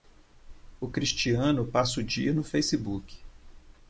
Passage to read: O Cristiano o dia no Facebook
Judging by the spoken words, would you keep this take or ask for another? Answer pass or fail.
fail